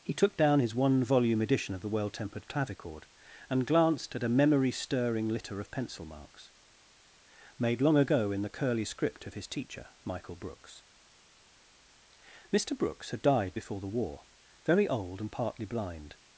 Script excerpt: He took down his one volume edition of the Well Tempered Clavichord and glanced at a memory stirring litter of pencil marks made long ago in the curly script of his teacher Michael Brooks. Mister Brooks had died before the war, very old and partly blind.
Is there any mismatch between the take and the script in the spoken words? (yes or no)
no